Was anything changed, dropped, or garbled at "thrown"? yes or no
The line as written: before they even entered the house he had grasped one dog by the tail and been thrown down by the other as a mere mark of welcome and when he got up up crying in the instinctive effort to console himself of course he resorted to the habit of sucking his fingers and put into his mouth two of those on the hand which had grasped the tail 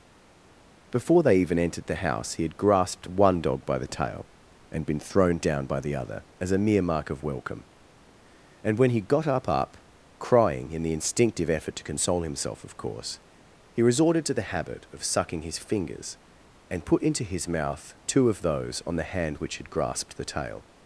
no